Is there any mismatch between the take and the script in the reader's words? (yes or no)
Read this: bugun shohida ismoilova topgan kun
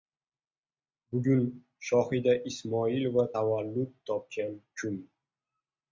yes